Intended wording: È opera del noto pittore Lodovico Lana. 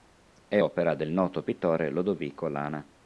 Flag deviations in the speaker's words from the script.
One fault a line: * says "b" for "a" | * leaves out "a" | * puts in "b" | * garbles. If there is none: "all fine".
all fine